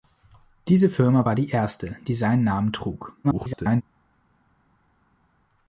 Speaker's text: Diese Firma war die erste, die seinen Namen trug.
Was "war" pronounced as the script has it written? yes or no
yes